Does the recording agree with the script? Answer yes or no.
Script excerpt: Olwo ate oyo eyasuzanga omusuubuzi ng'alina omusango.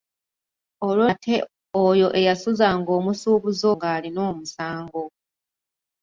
yes